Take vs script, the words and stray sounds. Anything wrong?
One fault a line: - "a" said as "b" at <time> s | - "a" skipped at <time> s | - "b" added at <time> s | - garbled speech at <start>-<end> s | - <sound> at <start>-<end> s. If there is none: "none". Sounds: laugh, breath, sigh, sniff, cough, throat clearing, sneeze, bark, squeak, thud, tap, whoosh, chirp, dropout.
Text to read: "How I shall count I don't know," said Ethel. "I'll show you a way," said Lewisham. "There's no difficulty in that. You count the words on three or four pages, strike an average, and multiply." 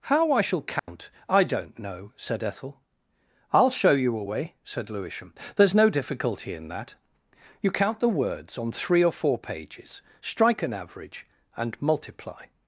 - dropout at 0.8-0.9 s